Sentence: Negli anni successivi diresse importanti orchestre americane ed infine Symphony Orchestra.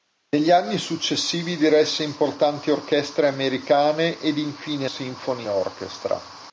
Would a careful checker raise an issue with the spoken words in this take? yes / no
no